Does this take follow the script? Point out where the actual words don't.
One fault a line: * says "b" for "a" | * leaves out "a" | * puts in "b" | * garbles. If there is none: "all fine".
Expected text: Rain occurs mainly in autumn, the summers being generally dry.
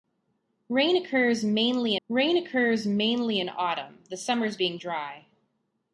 * puts in "rain occurs mainly"
* leaves out "generally"